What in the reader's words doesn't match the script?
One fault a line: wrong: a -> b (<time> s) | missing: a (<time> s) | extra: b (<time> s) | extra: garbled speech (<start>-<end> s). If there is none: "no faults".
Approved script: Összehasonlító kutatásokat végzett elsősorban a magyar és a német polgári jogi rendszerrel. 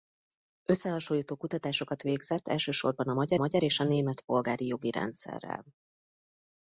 extra: magyar (3.4 s)